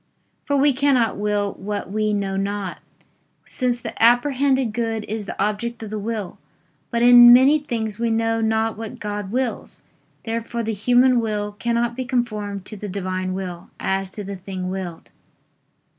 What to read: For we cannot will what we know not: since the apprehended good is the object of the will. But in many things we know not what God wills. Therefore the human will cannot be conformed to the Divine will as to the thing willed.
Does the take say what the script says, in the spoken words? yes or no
yes